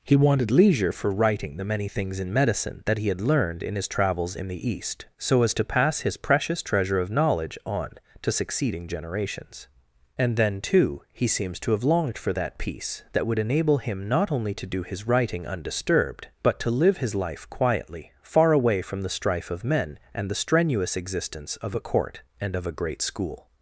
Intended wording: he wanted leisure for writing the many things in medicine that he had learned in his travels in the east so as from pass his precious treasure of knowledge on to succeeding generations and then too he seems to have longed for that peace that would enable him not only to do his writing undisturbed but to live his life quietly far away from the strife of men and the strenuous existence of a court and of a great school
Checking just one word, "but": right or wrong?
right